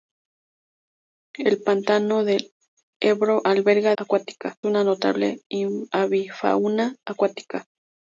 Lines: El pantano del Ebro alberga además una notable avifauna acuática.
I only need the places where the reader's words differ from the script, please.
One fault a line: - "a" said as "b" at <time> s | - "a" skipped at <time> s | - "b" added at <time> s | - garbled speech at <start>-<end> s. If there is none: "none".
- "además" said as "acuática" at 4.0 s